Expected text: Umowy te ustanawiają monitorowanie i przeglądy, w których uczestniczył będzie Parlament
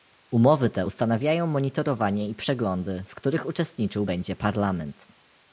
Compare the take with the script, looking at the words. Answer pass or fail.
pass